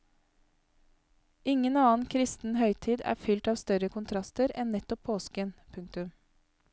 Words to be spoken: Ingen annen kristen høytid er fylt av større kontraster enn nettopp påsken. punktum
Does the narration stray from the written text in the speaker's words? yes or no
no